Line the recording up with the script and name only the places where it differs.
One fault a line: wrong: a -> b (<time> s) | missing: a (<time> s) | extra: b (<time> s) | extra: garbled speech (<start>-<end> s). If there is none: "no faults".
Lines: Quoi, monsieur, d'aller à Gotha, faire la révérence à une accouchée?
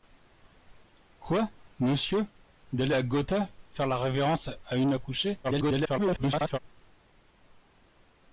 extra: garbled speech (5.4-6.6 s)